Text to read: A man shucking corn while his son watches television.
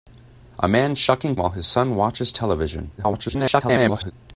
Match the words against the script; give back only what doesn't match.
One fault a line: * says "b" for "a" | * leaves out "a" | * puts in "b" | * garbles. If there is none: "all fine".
* leaves out "corn"
* garbles